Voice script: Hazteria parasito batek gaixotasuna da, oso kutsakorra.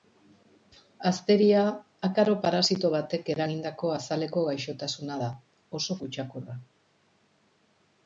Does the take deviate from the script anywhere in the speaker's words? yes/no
yes